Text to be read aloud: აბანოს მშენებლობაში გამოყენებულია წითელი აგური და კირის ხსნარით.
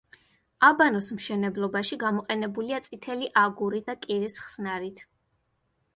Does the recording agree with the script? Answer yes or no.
yes